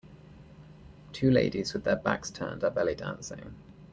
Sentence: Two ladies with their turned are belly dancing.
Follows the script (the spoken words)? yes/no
no